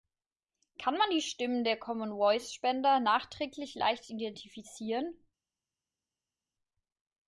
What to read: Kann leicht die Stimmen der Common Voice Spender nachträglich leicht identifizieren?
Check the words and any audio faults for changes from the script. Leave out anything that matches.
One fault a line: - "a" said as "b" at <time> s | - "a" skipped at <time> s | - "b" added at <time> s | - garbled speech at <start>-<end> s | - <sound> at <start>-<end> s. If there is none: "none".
- "leicht" said as "man" at 1.0 s